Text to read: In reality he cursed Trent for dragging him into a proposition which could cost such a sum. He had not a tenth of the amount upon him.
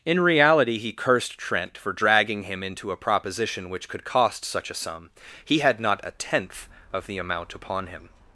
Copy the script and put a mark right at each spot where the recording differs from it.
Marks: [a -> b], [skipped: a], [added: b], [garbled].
In reality he cursed Trent for dragging him into a proposition which could cost such a sum. He had not a tenth of the amount upon him.